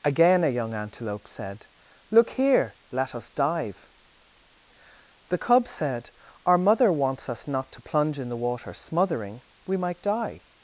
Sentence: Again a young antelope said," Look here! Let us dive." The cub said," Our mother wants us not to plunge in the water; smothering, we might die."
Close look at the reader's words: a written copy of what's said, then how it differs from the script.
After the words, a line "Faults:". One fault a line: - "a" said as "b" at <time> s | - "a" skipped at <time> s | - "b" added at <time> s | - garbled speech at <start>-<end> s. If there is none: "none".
Again a young antelope said," Look here! Let us dive." The cub said," Our mother wants us not to plunge in the water; smothering, we might die."
Faults:
none